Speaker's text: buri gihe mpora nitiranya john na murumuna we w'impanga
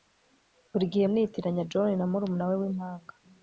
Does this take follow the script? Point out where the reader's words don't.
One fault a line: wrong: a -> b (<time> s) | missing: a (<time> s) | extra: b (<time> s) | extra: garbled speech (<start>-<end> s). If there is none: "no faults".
missing: mpora (1.1 s)